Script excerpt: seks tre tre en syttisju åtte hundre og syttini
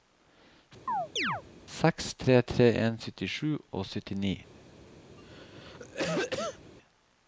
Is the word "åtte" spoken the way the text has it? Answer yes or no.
no